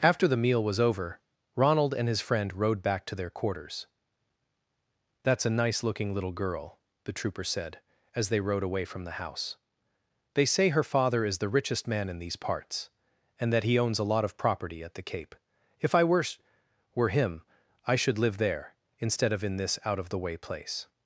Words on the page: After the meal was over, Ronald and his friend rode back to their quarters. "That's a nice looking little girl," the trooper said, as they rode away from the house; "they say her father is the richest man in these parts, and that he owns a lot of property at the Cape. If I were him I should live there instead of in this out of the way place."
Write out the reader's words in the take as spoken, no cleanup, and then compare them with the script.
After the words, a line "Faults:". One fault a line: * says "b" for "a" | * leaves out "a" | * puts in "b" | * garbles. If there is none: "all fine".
After the meal was over, Ronald and his friend rode back to their quarters. "That's a nice looking little girl," the trooper said, as they rode away from the house; "they say her father is the richest man in these parts, and that he owns a lot of property at the Cape. If I were were him I should live there instead of in this out of the way place."
Faults:
* puts in "were"